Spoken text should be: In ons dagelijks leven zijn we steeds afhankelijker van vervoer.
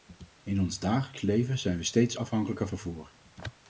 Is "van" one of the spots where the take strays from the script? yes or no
yes